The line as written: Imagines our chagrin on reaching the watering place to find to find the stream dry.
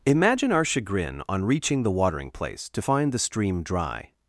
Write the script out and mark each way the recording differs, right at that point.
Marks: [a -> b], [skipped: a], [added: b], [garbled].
[Imagines -> Imagine] our chagrin on reaching the watering place to find [skipped: to find] the stream dry.